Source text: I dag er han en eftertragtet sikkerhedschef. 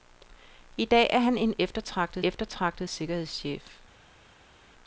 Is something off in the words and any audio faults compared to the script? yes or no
yes